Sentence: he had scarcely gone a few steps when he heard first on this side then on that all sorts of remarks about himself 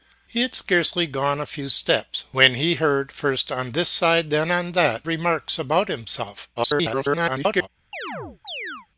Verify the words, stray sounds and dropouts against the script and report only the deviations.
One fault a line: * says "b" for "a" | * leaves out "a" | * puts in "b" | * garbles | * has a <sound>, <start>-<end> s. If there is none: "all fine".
* leaves out "all sorts of"
* garbles
* has a chirp, 7.9-8.9 s